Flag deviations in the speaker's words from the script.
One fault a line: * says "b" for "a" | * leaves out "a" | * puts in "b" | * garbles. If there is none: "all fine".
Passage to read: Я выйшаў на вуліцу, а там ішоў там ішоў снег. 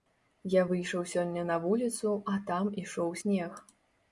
* puts in "сёння"
* leaves out "там ішоў"